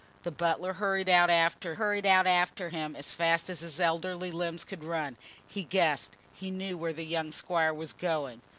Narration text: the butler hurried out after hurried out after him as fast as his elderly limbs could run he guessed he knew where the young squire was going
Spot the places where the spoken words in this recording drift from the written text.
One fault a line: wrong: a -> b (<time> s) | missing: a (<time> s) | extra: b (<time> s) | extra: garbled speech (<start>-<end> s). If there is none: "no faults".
no faults